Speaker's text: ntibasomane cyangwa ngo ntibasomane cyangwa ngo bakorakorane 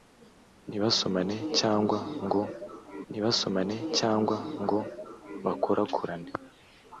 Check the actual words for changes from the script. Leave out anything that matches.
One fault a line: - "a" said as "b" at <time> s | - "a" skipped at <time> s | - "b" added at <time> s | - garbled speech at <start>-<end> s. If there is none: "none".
none